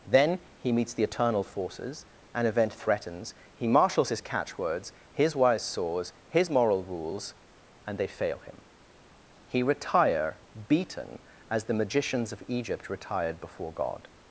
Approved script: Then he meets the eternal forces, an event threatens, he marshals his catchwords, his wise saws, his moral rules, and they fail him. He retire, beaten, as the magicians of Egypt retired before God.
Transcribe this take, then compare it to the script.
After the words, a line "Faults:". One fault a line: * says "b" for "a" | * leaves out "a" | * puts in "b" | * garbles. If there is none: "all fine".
Then he meets the eternal forces, an event threatens, he marshals his catchwords, his wise saws, his moral rules, and they fail him. He retire, beaten, as the magicians of Egypt retired before God.
Faults:
all fine